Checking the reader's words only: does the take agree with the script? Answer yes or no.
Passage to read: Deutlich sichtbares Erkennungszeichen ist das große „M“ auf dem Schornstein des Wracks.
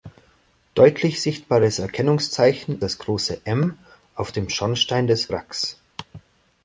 no